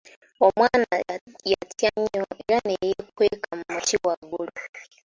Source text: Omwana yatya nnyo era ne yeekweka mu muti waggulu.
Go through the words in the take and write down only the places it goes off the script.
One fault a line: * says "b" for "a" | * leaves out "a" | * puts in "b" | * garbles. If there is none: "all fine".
all fine